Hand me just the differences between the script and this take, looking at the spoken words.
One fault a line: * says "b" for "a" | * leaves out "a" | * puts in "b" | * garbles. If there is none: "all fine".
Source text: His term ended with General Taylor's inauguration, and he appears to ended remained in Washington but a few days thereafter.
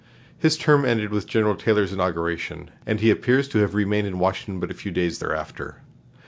* says "have" for "ended"